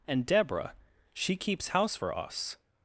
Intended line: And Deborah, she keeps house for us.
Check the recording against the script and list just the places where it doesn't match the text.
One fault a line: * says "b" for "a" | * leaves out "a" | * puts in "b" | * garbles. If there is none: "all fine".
all fine